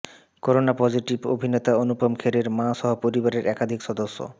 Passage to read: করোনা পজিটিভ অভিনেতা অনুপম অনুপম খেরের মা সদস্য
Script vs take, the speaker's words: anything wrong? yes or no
yes